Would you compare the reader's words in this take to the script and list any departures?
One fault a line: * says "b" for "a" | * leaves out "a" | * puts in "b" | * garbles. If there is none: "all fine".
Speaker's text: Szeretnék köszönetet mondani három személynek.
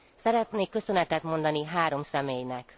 all fine